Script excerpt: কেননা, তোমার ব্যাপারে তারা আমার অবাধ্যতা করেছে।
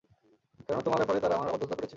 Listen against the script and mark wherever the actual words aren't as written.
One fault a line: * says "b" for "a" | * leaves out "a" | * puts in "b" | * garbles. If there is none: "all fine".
all fine